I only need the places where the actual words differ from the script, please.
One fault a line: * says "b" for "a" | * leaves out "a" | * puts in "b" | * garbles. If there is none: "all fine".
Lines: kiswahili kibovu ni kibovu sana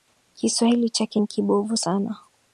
* says "chake" for "kibovu"